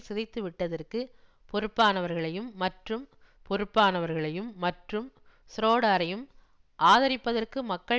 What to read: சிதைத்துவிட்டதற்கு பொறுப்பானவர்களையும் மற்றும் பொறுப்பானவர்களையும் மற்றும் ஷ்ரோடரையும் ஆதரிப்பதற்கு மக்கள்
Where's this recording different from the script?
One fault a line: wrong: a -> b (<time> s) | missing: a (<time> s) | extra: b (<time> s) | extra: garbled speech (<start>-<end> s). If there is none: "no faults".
no faults